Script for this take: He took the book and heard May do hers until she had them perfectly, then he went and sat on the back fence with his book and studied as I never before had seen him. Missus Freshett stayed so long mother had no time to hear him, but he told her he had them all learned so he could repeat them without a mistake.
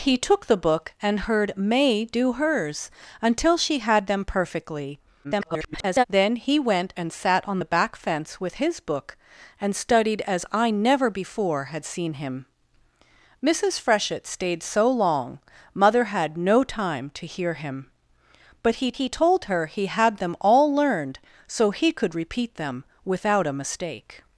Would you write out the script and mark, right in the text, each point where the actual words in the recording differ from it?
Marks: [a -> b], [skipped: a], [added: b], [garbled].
He took the book and heard May do hers until she had them perfectly, [garbled] then he went and sat on the back fence with his book and studied as I never before had seen him. Missus Freshett stayed so long mother had no time to hear him, but he [added: he] told her he had them all learned so he could repeat them without a mistake.